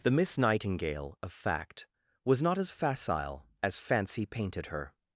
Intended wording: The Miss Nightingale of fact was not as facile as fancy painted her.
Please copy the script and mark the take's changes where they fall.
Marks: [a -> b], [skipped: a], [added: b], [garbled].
The Miss Nightingale of fact was not as facile as fancy painted her.